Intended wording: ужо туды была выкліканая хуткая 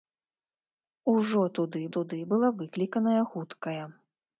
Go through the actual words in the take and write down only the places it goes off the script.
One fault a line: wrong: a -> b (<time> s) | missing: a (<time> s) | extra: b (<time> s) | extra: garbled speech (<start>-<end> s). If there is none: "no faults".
extra: туды (2.0 s)